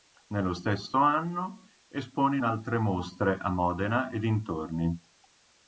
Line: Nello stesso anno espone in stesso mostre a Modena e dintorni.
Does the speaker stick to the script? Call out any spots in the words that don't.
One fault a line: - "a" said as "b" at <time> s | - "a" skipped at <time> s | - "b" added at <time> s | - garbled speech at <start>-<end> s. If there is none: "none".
- "stesso" said as "altre" at 2.4 s